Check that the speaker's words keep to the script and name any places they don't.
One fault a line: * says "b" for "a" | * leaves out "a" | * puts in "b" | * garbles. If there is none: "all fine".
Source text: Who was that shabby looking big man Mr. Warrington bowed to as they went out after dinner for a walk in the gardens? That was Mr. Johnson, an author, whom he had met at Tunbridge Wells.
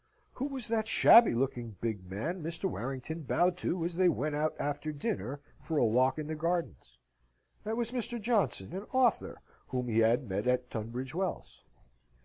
all fine